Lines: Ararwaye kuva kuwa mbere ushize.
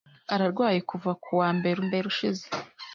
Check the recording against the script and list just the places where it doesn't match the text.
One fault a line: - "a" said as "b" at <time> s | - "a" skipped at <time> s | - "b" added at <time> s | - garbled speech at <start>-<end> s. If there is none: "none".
- "mbere" added at 1.9 s